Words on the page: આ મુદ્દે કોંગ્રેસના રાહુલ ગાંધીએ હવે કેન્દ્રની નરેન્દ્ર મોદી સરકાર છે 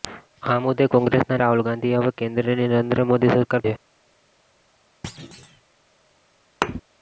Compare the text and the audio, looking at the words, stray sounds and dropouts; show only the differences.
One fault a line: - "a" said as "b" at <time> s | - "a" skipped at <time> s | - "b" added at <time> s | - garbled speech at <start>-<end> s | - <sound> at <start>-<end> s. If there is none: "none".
- thud at 5.0-5.6 s
- thud at 6.6-6.8 s